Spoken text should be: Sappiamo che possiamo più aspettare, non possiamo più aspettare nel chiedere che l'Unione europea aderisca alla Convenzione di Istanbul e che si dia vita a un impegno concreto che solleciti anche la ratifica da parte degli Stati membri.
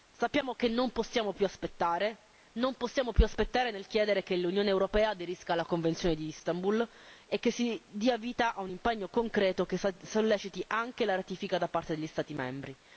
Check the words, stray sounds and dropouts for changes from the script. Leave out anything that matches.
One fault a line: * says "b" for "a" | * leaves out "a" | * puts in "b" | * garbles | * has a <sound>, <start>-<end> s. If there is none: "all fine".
* puts in "non"